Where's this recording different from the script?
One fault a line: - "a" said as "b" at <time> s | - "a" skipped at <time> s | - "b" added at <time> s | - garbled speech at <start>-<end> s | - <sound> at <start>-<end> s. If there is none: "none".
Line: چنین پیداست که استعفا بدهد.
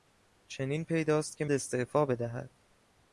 none